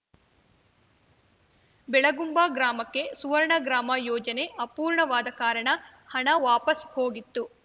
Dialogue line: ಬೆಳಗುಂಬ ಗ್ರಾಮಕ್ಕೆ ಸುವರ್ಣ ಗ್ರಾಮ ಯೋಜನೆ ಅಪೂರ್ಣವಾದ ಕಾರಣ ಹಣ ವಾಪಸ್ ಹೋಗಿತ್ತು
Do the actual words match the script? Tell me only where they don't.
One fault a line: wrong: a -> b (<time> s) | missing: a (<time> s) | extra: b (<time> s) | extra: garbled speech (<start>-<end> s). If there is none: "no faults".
no faults